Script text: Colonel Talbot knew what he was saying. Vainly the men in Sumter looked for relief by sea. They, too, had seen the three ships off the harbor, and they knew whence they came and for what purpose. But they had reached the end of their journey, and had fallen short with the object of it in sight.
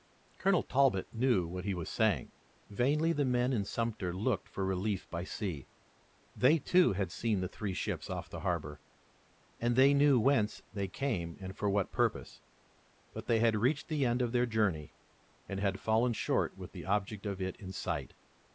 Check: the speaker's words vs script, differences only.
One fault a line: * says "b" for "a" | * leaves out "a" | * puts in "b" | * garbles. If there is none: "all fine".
all fine